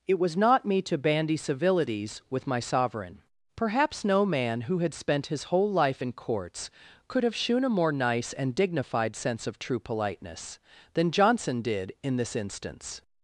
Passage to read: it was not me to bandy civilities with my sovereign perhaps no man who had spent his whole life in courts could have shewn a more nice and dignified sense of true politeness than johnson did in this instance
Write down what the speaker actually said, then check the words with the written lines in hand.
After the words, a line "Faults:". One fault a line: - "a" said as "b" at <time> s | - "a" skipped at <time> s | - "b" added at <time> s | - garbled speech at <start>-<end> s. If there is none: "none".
it was not me to bandy civilities with my sovereign perhaps no man who had spent his whole life in courts could have shewn a more nice and dignified sense of true politeness than johnson did in this instance
Faults:
none